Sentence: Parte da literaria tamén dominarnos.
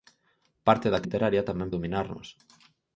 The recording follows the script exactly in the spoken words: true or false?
true